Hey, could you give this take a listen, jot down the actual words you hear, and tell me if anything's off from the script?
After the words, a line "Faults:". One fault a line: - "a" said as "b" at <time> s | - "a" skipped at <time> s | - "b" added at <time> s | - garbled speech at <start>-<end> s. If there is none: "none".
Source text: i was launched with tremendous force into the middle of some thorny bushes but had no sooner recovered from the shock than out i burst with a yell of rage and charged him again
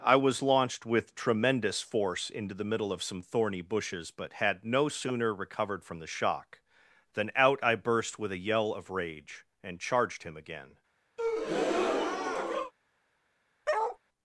i was launched with tremendous force into the middle of some thorny bushes but had no sooner recovered from the shock than out i burst with a yell of rage and charged him again
Faults:
none